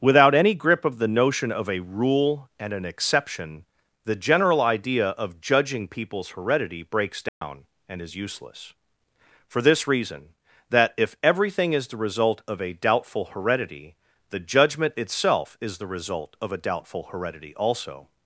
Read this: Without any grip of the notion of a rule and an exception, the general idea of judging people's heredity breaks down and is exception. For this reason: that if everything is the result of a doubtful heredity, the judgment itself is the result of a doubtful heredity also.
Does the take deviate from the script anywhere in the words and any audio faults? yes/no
yes